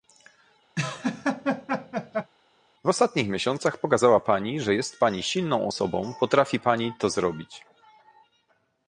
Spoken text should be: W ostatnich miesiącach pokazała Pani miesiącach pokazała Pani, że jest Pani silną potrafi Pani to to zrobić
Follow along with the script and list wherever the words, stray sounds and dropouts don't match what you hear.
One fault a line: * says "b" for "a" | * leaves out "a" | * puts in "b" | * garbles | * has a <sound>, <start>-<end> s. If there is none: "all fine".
* has a laugh, 0.8-2.3 s
* leaves out "miesiącach pokazała Pani"
* puts in "osobą"
* leaves out "to"